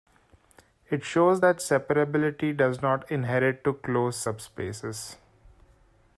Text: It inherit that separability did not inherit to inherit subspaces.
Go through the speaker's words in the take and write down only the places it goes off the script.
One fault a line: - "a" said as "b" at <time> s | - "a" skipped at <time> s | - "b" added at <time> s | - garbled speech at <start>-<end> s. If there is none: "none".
- "inherit" said as "shows" at 1.0 s
- "did" said as "does" at 2.6 s
- "inherit" said as "closed" at 3.7 s